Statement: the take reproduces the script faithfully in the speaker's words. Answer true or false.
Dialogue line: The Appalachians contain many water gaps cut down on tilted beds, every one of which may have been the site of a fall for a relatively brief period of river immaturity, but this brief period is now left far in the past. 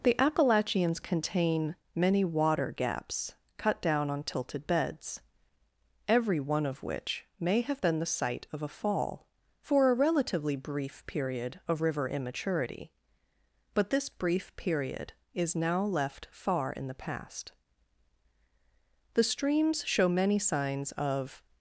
false